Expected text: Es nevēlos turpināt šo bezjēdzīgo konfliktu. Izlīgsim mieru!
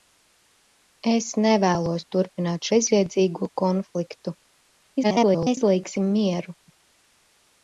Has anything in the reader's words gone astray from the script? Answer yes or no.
yes